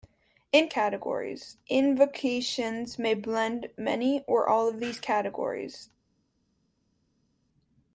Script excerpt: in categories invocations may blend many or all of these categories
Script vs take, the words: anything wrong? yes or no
no